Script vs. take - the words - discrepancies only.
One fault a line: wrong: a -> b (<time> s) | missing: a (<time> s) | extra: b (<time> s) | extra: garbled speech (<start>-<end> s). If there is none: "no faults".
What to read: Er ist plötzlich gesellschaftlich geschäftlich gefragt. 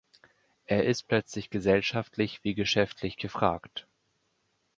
extra: wie (2.4 s)